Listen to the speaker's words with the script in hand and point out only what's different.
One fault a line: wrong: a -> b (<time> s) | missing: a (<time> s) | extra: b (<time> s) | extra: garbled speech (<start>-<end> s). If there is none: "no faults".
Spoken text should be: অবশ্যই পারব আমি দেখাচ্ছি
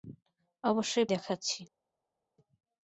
missing: পারব আমি (1.1 s)